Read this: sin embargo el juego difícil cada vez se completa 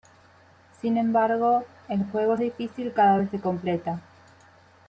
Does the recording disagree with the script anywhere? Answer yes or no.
no